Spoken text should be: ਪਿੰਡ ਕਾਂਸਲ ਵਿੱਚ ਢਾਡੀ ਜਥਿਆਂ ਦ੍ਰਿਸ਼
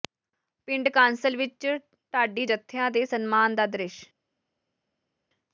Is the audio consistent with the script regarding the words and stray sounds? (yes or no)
no